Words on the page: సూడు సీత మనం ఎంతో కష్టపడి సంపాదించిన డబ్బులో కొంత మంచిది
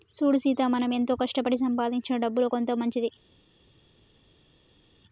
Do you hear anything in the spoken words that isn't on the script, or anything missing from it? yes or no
no